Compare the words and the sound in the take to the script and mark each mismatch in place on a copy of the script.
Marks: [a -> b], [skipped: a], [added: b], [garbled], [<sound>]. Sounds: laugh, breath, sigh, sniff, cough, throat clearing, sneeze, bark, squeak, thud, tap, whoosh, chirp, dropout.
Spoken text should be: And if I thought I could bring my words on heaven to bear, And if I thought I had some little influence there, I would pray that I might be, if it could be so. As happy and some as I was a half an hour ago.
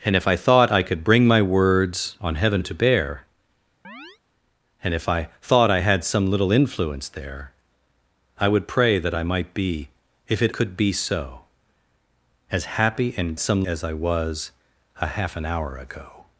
And if I thought I could bring my words on heaven to bear, [chirp] And if I thought I had some little influence there, I would pray that I might be, if it could be so. As happy and some as I was a half an hour ago.